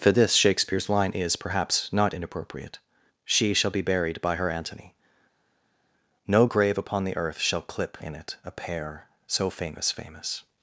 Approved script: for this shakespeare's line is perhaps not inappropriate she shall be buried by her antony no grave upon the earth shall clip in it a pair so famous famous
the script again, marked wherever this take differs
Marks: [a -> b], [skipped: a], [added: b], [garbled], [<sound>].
for this shakespeare's line is perhaps not inappropriate she shall be buried by her antony no grave upon the earth shall clip in it a pair so famous famous